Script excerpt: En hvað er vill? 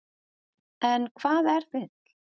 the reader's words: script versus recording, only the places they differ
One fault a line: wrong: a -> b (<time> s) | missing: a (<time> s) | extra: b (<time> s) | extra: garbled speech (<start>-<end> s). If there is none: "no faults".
no faults